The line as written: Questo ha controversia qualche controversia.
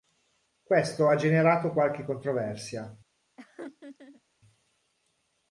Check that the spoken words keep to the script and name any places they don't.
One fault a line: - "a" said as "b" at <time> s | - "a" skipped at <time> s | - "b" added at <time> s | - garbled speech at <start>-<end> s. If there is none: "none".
- "controversia" said as "generato" at 1.2 s